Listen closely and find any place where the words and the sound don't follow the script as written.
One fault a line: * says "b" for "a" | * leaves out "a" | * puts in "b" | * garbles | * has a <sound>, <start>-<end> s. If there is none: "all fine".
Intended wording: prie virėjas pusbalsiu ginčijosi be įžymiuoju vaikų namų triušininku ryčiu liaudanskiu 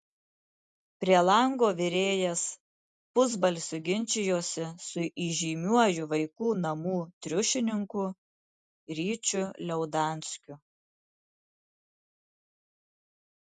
* puts in "lango"
* says "su" for "be"